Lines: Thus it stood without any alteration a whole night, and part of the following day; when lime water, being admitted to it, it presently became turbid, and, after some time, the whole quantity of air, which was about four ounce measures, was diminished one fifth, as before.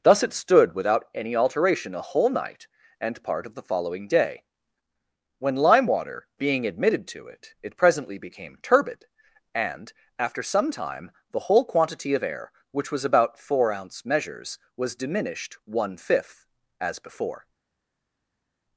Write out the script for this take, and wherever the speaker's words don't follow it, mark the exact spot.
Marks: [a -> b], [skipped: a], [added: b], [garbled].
Thus it stood without any alteration a whole night, and part of the following day; when lime water, being admitted to it, it presently became turbid, and, after some time, the whole quantity of air, which was about four ounce measures, was diminished one fifth, as before.